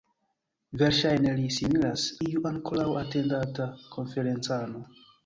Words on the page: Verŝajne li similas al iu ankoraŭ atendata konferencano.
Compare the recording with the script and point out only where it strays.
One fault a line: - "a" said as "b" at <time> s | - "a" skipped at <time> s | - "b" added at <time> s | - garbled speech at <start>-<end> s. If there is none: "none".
- "al" skipped at 2.1 s